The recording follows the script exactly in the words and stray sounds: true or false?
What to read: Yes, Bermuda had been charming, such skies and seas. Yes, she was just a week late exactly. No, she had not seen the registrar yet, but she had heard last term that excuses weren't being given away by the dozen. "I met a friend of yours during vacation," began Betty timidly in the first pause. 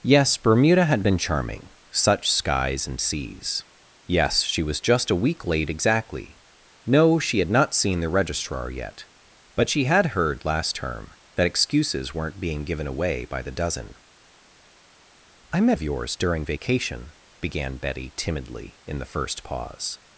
false